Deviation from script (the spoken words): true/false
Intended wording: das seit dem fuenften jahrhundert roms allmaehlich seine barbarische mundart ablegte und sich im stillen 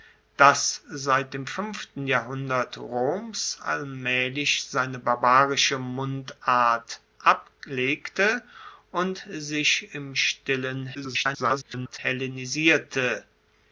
true